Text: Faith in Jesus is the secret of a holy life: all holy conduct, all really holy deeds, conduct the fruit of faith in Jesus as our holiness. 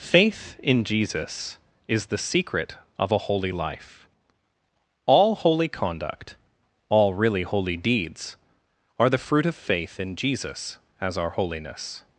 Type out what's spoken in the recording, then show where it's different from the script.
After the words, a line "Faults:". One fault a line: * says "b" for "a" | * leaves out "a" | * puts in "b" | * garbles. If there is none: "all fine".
Faith in Jesus is the secret of a holy life: all holy conduct, all really holy deeds, are the fruit of faith in Jesus as our holiness.
Faults:
* says "are" for "conduct"